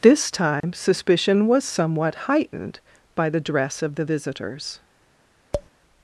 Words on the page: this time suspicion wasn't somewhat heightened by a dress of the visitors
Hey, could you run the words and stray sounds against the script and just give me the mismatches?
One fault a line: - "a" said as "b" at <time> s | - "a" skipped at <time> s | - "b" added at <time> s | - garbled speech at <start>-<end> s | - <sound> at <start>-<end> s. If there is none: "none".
- dropout at 0.6-0.6 s
- "wasn't" said as "was" at 1.4 s
- "a" said as "the" at 3.3 s
- tap at 5.5-5.7 s